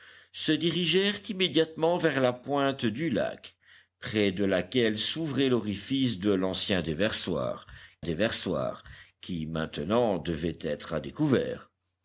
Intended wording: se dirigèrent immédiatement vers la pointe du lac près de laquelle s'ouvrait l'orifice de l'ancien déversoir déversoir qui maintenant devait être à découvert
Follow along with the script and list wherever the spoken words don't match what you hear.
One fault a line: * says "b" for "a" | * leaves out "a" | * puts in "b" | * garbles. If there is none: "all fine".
all fine